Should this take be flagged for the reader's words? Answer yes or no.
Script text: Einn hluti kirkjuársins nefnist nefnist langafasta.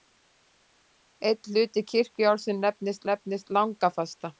no